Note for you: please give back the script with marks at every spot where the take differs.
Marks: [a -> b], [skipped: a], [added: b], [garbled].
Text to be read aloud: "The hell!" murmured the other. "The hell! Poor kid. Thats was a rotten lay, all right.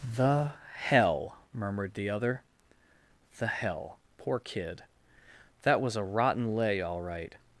"The hell!" murmured the other. "The hell! Poor kid. [Thats -> That] was a rotten lay, all right.